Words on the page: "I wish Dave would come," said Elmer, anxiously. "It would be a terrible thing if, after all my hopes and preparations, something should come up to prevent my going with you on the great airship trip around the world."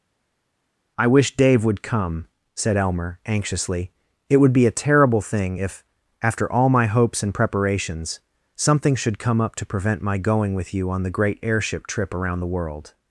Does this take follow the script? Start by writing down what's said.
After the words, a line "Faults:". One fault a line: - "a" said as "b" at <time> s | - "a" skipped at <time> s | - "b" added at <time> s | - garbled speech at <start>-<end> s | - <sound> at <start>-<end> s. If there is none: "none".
"I wish Dave would come," said Elmer, anxiously. "It would be a terrible thing if, after all my hopes and preparations, something should come up to prevent my going with you on the great airship trip around the world."
Faults:
none